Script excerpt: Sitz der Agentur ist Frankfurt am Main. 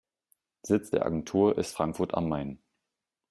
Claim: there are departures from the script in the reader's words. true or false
false